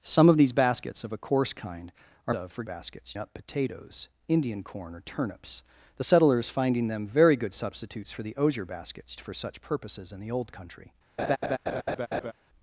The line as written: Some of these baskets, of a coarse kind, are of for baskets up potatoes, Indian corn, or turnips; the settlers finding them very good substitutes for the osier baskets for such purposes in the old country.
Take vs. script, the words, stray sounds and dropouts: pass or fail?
fail